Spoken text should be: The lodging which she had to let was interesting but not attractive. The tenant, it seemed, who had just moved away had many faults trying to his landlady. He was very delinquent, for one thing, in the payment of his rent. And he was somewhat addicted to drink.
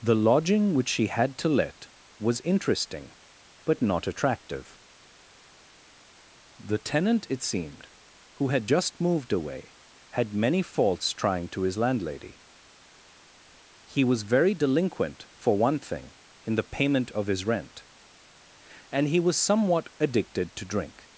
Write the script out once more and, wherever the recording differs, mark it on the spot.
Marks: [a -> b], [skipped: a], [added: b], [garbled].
The lodging which she had to let was interesting but not attractive. The tenant, it seemed, who had just moved away had many faults trying to his landlady. He was very delinquent, for one thing, in the payment of his rent. And he was somewhat addicted to drink.